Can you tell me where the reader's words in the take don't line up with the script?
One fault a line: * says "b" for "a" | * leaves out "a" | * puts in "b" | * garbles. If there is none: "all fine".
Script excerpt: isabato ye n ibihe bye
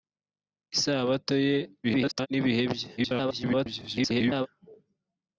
* garbles
* garbles